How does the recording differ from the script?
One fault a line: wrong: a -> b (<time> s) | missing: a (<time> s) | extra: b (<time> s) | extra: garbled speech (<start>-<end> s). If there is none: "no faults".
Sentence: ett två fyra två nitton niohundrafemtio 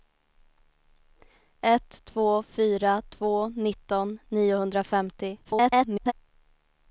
extra: garbled speech (5.4-6.1 s)